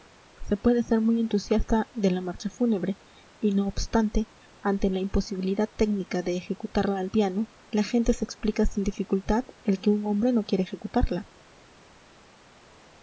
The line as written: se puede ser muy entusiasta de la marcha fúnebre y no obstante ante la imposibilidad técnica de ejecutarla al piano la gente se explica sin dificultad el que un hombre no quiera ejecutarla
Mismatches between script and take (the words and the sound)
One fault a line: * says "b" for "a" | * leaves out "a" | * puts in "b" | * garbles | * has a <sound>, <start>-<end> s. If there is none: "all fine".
all fine